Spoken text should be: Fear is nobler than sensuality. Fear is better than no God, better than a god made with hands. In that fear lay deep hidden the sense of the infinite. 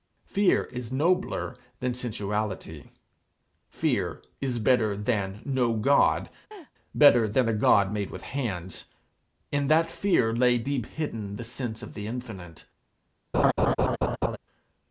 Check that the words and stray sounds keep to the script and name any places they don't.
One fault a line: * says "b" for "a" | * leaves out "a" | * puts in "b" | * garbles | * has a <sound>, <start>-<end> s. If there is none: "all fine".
* has a laugh, 6.5-6.7 s
* has a laugh, 13.3-14.4 s